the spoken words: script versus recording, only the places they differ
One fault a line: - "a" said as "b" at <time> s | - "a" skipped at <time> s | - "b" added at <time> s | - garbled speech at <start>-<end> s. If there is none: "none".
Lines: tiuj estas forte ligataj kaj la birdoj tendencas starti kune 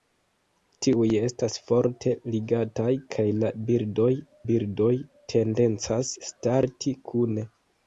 - "birdoj" added at 4.5 s